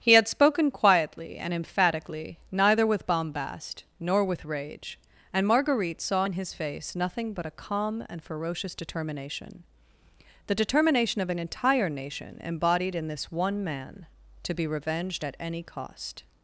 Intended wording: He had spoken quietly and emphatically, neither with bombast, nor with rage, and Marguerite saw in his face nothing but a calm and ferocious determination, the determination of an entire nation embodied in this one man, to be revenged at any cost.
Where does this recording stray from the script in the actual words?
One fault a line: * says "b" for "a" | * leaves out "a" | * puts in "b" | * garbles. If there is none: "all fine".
all fine